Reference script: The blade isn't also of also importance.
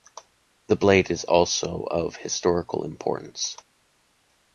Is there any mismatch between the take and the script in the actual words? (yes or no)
yes